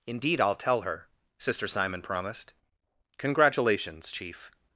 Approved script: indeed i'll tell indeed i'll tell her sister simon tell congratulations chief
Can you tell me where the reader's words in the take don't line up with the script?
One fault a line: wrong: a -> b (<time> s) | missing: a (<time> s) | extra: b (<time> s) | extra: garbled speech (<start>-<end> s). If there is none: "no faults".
missing: indeed i'll tell (0.8 s)
wrong: tell -> promised (2.0 s)